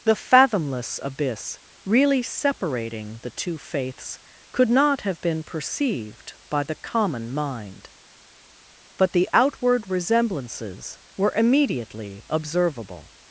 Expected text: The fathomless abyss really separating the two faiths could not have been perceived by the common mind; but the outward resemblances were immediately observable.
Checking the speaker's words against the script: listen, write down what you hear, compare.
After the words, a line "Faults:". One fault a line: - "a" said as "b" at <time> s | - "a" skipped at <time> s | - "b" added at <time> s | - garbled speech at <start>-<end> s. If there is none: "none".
The fathomless abyss really separating the two faiths could not have been perceived by the common mind; but the outward resemblances were immediately observable.
Faults:
none